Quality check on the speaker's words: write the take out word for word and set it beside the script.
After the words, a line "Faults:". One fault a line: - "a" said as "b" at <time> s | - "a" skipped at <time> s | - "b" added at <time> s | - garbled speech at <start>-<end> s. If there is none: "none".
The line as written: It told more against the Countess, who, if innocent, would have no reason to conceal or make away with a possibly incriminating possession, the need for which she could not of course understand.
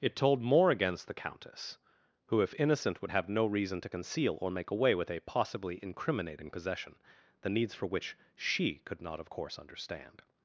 It told more against the Countess, who, if innocent, would have no reason to conceal or make away with a possibly incriminating possession, the needs for which she could not of course understand.
Faults:
- "need" said as "needs" at 7.5 s